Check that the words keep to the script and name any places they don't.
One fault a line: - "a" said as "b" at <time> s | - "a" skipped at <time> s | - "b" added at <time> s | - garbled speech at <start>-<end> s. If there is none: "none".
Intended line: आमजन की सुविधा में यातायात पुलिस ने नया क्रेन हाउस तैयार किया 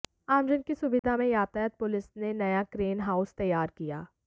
none